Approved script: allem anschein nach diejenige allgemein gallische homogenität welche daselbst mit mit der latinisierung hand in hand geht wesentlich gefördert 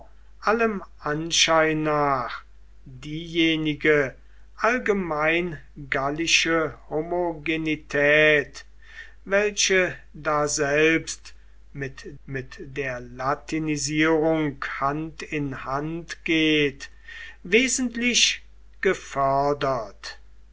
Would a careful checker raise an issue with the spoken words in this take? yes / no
no